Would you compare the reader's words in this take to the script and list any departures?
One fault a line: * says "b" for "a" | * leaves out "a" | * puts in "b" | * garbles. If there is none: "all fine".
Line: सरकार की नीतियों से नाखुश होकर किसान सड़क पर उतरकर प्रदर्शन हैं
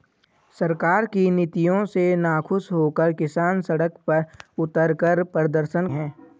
all fine